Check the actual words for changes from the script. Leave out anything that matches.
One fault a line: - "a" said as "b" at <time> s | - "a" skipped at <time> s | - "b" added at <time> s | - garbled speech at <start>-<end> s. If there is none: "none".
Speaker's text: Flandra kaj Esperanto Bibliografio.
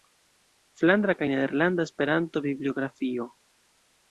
- "Nederlanda" added at 1.3 s